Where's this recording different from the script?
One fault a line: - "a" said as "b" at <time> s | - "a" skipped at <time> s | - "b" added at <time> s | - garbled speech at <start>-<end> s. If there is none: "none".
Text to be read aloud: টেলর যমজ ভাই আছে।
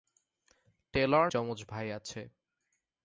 none